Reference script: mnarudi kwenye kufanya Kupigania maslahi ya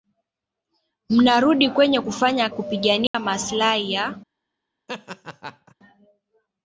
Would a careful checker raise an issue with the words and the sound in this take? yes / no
yes